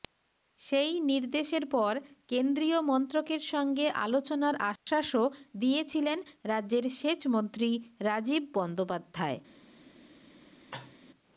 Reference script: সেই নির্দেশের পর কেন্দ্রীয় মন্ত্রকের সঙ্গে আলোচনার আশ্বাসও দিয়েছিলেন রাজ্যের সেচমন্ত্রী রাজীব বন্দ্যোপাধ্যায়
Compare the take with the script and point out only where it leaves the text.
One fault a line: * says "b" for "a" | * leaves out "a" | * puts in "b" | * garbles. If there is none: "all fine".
all fine